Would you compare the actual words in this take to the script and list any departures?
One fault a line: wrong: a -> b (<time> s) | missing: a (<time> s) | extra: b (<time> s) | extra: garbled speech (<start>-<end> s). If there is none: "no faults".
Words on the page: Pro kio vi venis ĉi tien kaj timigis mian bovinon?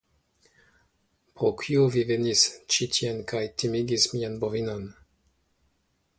no faults